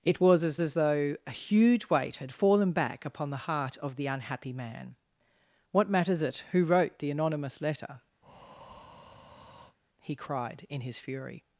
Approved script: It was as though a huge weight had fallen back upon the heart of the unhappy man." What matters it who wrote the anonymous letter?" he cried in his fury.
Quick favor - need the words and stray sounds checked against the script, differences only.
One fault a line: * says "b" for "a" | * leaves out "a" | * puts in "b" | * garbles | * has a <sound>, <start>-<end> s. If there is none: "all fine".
* puts in "as"
* has a breath, 8.2-9.8 s